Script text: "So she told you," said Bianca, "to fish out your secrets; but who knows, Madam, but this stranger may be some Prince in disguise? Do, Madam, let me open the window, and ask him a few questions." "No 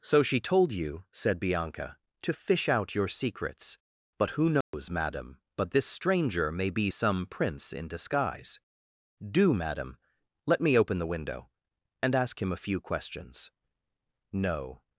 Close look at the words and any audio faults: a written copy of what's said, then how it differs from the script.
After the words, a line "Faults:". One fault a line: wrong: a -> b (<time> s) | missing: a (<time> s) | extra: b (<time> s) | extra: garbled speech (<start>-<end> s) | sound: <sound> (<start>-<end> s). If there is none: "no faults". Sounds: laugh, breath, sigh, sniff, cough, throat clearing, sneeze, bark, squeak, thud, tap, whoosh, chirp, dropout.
"So she told you," said Bianca, "to fish out your secrets; but who knows, Madam, but this stranger may be some Prince in disguise? Do, Madam, let me open the window, and ask him a few questions." "No
Faults:
sound: dropout (4.6-4.7 s)